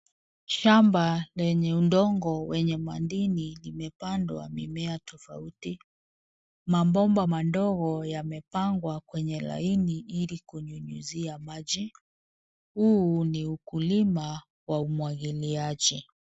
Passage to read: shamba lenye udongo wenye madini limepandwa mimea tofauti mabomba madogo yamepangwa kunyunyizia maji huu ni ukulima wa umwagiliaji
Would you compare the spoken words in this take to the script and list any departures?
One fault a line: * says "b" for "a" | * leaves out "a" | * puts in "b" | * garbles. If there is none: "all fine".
* puts in "kwenye laini ili"